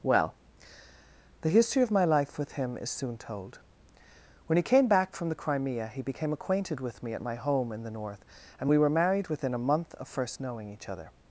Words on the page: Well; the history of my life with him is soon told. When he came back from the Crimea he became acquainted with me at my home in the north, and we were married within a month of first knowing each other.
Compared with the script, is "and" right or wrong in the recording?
right